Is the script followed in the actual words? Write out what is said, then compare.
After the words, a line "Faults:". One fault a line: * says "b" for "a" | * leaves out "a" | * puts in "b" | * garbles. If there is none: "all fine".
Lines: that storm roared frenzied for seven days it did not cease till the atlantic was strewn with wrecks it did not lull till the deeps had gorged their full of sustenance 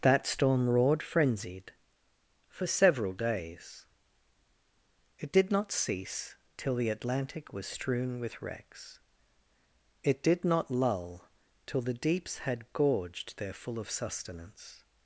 that storm roared frenzied for several days it did not cease till the atlantic was strewn with wrecks it did not lull till the deeps had gorged their full of sustenance
Faults:
* says "several" for "seven"